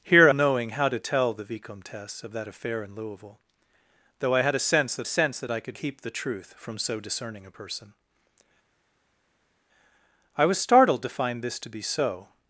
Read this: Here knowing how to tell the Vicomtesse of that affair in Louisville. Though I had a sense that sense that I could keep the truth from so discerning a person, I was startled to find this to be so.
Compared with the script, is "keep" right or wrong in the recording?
right